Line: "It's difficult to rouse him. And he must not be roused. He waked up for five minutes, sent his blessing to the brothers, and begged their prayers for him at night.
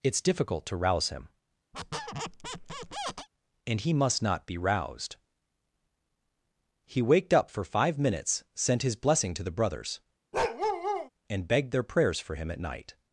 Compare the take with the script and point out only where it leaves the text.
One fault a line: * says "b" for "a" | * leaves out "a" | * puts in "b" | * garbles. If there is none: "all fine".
all fine